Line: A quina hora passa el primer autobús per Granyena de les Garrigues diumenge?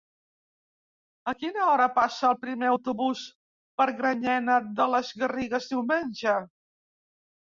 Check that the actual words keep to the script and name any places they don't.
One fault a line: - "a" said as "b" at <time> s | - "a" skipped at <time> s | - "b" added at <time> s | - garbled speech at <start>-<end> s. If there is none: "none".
none